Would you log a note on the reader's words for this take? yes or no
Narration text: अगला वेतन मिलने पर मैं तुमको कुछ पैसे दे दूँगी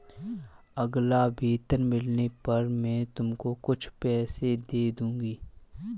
no